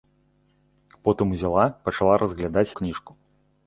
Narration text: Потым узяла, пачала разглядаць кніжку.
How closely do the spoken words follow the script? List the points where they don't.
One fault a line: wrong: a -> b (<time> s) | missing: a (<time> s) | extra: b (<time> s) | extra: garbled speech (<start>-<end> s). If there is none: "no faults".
no faults